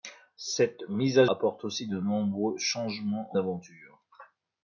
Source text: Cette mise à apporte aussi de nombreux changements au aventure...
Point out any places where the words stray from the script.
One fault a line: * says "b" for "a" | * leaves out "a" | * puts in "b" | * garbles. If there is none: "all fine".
all fine